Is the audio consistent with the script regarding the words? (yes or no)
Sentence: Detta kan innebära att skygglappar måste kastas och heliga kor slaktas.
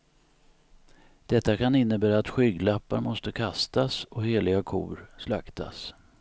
yes